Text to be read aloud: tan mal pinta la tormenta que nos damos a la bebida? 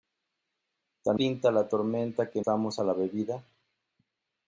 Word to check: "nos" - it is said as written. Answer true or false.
false